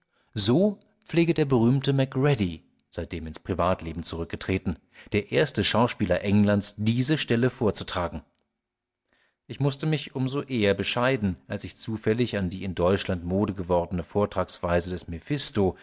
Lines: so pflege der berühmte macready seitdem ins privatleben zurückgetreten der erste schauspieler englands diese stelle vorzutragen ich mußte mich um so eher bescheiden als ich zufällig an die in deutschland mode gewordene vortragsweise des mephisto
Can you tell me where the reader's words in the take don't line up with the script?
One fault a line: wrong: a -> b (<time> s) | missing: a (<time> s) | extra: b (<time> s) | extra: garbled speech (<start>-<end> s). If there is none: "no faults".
no faults